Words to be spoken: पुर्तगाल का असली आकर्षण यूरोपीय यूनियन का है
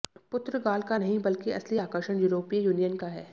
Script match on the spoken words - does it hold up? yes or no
no